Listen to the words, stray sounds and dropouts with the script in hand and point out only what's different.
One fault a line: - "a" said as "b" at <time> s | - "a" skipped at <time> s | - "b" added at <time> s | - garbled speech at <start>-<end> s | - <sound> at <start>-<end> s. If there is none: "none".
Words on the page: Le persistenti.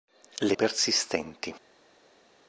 none